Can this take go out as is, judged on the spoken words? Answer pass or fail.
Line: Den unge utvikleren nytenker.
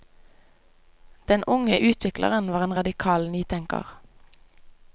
fail